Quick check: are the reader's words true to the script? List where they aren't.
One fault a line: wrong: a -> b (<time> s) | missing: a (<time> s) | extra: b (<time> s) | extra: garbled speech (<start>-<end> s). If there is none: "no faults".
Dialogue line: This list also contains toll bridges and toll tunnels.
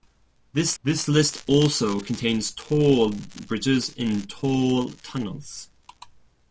extra: this (0.8 s)